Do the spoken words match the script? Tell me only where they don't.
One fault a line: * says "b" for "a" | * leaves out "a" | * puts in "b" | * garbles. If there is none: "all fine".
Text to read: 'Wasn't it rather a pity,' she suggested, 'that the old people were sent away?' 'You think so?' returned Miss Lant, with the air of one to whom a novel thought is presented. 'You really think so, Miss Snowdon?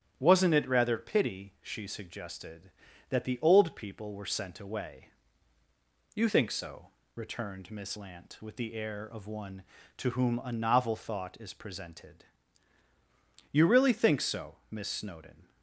* leaves out "a"